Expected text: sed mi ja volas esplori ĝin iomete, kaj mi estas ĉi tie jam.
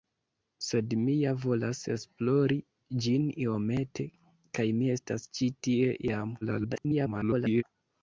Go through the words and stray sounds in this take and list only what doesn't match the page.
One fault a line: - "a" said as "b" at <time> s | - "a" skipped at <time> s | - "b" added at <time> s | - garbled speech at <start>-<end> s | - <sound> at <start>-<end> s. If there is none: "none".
- garbled speech at 6.4-7.6 s